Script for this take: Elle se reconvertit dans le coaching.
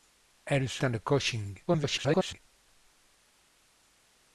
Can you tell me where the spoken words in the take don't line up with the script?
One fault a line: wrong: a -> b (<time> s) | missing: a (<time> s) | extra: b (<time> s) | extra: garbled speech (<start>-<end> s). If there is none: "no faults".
missing: reconvertit (0.8 s)
extra: garbled speech (1.7-2.4 s)